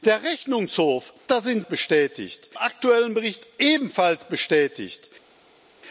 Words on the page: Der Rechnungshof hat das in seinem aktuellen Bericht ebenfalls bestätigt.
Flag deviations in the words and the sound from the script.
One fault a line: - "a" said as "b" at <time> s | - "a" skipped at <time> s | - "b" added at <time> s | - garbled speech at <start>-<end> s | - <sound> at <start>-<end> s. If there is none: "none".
- "hat" skipped at 1.1 s
- "seinem" said as "bestätigt" at 1.6 s